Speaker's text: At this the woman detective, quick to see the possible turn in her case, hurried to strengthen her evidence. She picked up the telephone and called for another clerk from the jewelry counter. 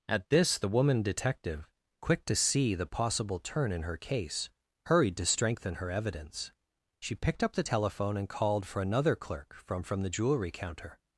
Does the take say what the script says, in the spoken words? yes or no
no